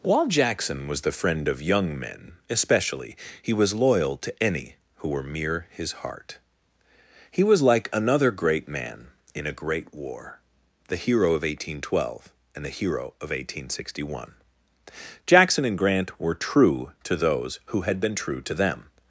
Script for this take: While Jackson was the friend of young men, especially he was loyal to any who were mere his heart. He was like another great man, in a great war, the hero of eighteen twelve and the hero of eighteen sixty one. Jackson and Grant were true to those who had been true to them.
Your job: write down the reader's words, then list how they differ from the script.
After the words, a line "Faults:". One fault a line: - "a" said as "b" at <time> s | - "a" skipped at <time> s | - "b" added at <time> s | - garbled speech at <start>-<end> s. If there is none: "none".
While Jackson was the friend of young men, especially he was loyal to any who were mere his heart. He was like another great man, in a great war, the hero of eighteen twelve and the hero of eighteen sixty one. Jackson and Grant were true to those who had been true to them.
Faults:
none